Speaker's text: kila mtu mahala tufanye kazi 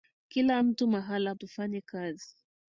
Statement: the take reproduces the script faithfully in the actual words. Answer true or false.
true